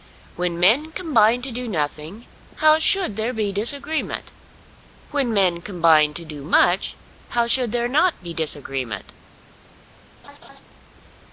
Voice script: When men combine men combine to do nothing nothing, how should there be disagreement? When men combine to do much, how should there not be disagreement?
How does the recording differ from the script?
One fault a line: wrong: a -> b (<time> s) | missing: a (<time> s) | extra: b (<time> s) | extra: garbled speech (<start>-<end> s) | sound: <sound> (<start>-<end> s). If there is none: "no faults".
missing: men combine (1.4 s)
missing: nothing (2.2 s)
sound: laugh (10.2-10.6 s)